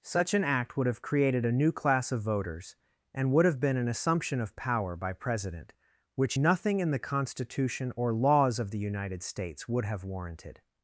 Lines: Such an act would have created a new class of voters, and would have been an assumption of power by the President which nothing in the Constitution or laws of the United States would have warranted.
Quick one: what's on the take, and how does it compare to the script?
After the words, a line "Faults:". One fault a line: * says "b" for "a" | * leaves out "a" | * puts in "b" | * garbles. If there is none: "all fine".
Such an act would have created a new class of voters, and would have been an assumption of power by President which nothing in the Constitution or laws of the United States would have warranted.
Faults:
* leaves out "the"